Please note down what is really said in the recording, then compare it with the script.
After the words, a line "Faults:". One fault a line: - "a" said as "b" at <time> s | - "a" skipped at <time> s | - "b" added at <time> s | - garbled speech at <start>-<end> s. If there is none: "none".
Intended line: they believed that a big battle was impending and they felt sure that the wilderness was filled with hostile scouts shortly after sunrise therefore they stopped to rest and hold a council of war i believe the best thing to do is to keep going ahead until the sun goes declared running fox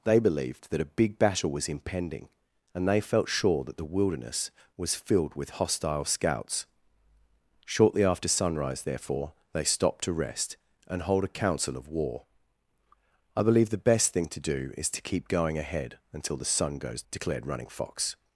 they believed that a big battle was impending and they felt sure that the wilderness was filled with hostile scouts shortly after sunrise therefore they stopped to rest and hold a council of war i believe the best thing to do is to keep going ahead until the sun goes declared running fox
Faults:
none